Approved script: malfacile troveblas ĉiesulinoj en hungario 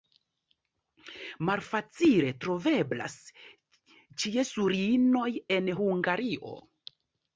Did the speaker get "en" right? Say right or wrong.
right